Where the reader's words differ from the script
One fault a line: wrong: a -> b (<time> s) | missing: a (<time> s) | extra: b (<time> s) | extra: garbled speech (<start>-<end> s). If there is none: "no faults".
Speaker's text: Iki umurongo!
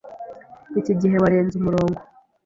extra: gihe warenze (1.0 s)